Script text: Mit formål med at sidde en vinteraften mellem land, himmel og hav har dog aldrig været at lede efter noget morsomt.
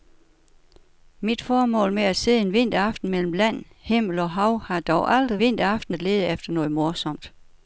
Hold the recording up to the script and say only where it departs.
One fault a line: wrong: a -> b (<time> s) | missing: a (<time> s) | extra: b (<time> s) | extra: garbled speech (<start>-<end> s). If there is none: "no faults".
wrong: været -> vinteraften (5.4 s)